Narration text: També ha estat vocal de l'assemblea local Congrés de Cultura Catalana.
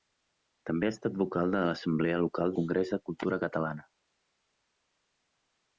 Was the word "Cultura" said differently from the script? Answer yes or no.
no